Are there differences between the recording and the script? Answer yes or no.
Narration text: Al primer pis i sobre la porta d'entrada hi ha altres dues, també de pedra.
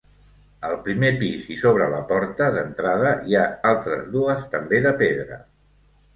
no